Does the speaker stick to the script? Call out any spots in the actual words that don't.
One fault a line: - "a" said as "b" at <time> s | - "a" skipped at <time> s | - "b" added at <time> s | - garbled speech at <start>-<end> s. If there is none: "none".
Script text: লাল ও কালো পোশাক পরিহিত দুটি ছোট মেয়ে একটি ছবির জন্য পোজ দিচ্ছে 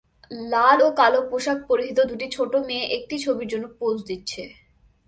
none